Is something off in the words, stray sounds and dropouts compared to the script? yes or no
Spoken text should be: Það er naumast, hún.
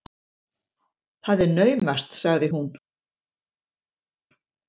yes